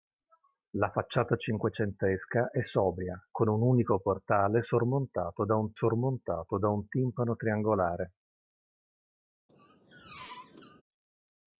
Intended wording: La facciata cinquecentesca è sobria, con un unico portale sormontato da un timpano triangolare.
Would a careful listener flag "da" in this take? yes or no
no